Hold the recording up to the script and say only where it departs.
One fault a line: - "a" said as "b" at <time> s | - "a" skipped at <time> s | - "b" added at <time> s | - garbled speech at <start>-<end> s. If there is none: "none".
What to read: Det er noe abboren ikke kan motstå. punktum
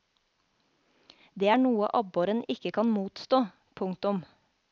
none